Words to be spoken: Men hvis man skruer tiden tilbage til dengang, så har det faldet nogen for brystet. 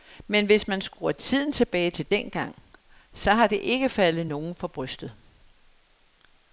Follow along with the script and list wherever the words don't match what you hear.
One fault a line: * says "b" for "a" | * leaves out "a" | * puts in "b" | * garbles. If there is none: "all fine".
* puts in "ikke"